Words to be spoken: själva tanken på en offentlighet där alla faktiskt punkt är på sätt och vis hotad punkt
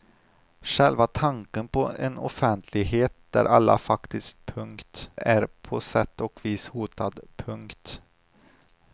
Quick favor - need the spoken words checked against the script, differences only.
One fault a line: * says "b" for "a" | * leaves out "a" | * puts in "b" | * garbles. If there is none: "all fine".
all fine